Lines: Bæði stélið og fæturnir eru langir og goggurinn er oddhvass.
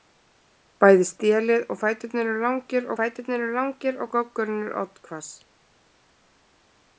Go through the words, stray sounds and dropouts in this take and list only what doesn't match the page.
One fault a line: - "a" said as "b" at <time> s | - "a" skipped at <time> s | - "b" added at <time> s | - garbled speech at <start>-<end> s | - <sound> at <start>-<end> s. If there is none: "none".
- "fæturnir eru langir" added at 3.0 s